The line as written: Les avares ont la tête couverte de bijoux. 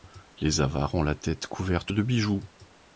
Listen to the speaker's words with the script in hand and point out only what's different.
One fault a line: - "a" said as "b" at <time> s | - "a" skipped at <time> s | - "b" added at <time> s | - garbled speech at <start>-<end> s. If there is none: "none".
none